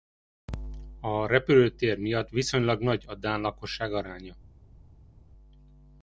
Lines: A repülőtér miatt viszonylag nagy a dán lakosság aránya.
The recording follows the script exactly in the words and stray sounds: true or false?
true